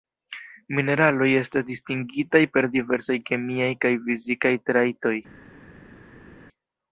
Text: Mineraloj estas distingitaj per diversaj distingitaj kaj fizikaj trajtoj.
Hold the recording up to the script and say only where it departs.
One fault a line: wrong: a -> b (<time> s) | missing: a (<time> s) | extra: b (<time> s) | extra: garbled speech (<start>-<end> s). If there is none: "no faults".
wrong: distingitaj -> kemiaj (3.3 s)